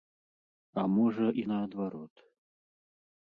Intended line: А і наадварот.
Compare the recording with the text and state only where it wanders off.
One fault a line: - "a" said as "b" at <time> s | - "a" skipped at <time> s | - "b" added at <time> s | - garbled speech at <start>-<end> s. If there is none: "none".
- "можа" added at 0.9 s